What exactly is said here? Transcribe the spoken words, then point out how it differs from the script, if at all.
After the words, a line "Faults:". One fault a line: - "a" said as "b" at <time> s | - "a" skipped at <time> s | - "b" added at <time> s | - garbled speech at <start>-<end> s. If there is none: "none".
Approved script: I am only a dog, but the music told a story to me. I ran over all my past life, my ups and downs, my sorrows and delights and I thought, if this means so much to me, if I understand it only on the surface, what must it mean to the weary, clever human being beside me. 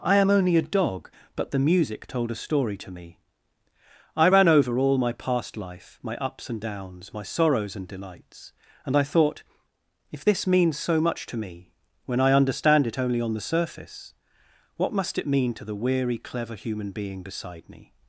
I am only a dog, but the music told a story to me. I ran over all my past life, my ups and downs, my sorrows and delights and I thought, if this means so much to me, when I understand it only on the surface, what must it mean to the weary, clever human being beside me.
Faults:
- "if" said as "when" at 12.0 s